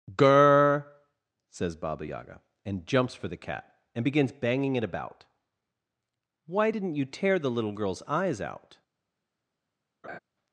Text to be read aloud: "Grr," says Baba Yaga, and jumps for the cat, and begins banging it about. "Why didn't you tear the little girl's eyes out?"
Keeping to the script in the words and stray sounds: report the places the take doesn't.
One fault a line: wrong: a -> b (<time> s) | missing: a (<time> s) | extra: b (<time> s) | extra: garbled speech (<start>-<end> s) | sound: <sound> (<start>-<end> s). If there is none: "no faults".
sound: laugh (10.0-10.2 s)